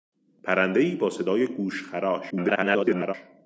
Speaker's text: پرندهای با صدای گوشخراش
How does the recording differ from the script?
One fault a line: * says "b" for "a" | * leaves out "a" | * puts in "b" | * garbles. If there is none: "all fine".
* garbles